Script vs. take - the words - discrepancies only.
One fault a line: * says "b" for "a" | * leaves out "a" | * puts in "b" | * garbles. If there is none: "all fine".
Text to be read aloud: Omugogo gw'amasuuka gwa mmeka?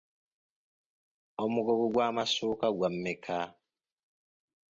all fine